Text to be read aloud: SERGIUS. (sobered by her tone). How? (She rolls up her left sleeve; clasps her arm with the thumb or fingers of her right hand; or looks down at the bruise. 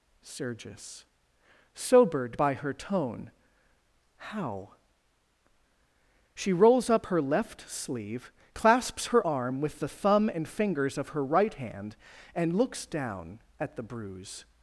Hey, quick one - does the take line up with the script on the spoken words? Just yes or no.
no